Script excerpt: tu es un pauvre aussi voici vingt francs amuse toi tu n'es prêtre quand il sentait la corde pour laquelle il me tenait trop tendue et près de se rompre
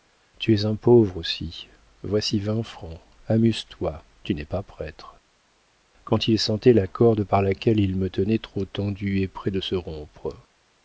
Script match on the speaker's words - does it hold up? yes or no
no